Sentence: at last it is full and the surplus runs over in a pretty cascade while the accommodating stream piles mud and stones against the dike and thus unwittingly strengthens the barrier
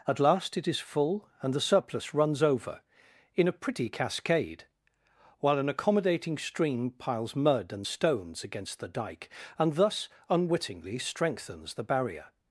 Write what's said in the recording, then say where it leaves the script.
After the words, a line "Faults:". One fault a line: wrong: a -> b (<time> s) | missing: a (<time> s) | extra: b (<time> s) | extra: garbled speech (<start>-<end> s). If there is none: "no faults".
at last it is full and the surplus runs over in a pretty cascade while an accommodating stream piles mud and stones against the dike and thus unwittingly strengthens the barrier
Faults:
wrong: the -> an (5.6 s)